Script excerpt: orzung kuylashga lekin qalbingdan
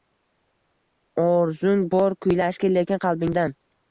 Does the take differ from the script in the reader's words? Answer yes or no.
yes